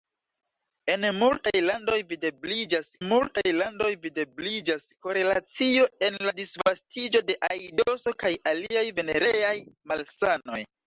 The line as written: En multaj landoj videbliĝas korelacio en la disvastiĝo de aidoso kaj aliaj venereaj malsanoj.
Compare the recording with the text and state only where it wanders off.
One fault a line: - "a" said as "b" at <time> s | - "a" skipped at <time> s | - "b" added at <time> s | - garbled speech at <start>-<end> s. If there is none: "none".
- "multaj landoj videbliĝas" added at 3.1 s